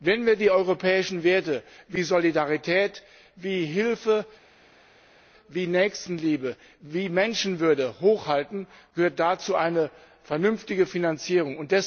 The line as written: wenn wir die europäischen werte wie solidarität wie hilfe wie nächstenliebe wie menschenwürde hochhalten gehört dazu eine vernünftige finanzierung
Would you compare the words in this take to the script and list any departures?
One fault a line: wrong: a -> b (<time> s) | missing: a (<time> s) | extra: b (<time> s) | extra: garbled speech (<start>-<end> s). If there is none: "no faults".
no faults